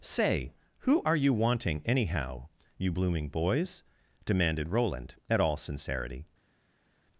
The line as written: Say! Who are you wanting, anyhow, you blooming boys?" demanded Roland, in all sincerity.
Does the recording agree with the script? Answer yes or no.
no